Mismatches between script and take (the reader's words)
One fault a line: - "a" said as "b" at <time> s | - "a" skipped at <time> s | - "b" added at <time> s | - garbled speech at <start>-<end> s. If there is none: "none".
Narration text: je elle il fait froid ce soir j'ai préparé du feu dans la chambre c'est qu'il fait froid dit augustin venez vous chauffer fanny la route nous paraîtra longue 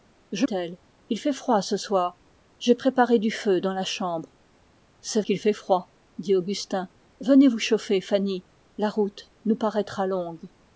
none